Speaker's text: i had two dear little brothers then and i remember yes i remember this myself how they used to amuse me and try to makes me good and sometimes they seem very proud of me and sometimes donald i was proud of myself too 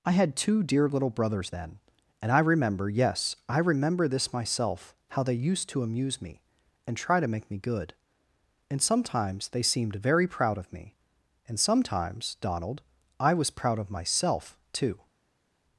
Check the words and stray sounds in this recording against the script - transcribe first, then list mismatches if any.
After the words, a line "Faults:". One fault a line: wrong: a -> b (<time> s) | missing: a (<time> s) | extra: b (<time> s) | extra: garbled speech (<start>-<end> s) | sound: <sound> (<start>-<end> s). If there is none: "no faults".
i had two dear little brothers then and i remember yes i remember this myself how they used to amuse me and try to make me good and sometimes they seemed very proud of me and sometimes donald i was proud of myself too
Faults:
wrong: makes -> make (7.3 s)
wrong: seem -> seemed (9.6 s)